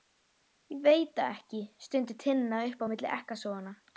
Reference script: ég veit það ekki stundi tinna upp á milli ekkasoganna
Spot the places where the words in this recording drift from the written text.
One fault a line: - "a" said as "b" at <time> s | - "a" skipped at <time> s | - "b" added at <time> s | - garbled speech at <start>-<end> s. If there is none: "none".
none